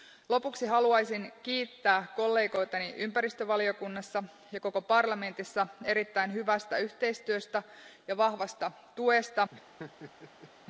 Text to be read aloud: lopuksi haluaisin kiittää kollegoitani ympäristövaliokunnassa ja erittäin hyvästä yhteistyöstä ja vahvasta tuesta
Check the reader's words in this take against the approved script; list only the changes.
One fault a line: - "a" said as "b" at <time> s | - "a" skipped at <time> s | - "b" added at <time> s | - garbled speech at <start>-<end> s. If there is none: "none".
- "koko parlamentissa" added at 4.6 s